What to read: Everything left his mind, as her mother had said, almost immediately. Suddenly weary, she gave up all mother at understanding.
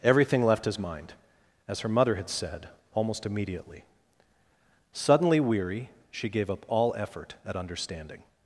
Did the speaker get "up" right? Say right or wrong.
right